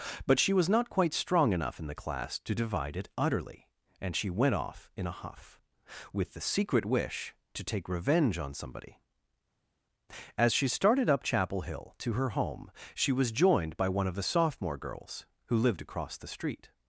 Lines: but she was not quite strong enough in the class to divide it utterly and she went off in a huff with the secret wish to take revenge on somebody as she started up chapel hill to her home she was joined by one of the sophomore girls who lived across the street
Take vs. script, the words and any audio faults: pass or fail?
pass